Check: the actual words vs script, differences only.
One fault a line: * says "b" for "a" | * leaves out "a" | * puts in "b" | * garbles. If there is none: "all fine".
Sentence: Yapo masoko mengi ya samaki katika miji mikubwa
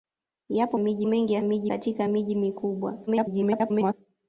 * says "miji" for "masoko"
* says "miji" for "samaki"
* garbles